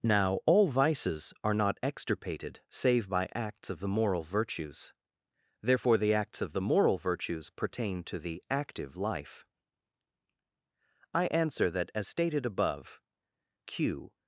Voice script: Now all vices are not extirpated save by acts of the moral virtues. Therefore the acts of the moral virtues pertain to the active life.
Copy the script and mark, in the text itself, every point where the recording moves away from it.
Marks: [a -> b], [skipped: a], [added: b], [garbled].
Now all vices are not extirpated save by acts of the moral virtues. Therefore the acts of the moral virtues pertain to the active life. [added: I answer that As stated above Q]